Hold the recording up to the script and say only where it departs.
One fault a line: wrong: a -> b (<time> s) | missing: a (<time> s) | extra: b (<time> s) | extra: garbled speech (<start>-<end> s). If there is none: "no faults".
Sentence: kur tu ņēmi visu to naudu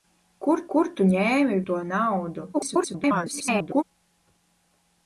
extra: kur (0.7 s)
missing: visu (1.6 s)
extra: garbled speech (2.5-3.8 s)